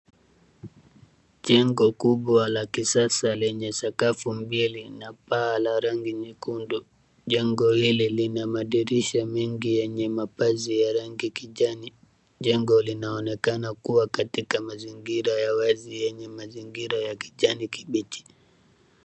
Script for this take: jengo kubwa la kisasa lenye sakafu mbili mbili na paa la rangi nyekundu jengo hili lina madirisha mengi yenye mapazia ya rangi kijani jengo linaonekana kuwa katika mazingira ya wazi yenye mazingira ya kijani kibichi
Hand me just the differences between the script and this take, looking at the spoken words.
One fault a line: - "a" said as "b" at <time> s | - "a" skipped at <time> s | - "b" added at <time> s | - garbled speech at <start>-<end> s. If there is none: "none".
- "mbili" skipped at 4.9 s